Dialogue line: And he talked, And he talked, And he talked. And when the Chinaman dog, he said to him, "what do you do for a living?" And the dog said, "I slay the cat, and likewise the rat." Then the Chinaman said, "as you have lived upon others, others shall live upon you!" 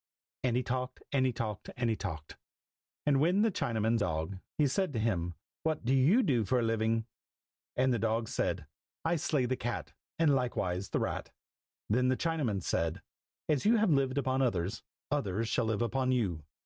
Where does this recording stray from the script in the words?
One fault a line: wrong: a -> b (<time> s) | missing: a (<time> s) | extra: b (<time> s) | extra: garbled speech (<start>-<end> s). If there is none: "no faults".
no faults